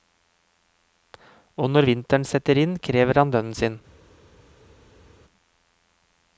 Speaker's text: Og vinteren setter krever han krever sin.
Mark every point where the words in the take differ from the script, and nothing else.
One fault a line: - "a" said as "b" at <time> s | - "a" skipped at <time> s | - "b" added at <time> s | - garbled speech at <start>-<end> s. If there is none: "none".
- "når" added at 1.7 s
- "inn" added at 2.6 s
- "krever" said as "lønnen" at 3.3 s